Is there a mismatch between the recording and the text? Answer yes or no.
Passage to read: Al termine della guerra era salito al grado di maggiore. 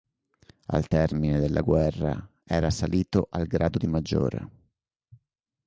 no